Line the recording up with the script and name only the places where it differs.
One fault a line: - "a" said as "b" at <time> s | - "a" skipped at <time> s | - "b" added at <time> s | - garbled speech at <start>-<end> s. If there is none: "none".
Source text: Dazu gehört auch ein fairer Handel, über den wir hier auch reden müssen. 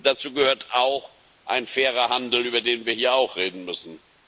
none